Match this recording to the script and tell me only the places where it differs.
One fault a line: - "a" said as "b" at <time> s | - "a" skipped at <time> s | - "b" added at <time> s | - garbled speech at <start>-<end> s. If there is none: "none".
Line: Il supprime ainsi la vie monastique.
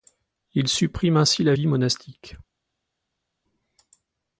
none